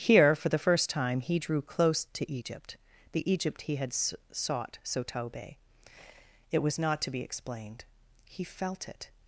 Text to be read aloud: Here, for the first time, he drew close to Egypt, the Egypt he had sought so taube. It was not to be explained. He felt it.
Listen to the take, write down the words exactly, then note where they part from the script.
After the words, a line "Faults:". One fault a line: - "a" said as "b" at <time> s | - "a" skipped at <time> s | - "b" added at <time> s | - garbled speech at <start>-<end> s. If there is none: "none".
Here, for the first time, he drew close to Egypt, the Egypt he had sought so taube. It was not to be explained. He felt it.
Faults:
none